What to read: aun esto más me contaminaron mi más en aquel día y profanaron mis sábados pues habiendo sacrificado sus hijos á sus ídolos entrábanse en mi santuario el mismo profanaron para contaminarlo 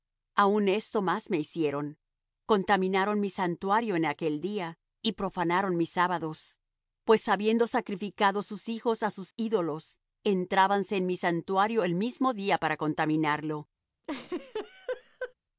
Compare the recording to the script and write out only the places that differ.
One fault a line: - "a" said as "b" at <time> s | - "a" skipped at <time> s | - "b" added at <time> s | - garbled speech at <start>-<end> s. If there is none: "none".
- "hicieron" added at 1.4 s
- "más" said as "santuario" at 3.3 s
- "profanaron" said as "día" at 12.3 s